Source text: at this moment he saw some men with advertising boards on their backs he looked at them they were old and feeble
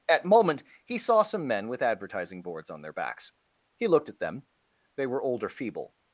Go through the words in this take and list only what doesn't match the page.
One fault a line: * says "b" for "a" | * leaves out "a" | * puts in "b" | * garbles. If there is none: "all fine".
* leaves out "this"
* says "or" for "and"